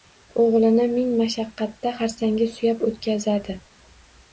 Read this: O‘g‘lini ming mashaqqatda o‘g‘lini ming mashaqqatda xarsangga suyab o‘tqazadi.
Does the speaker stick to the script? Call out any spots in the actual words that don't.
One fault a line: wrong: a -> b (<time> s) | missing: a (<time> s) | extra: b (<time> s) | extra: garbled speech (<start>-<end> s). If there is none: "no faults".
missing: o‘g‘lini ming mashaqqatda (2.0 s)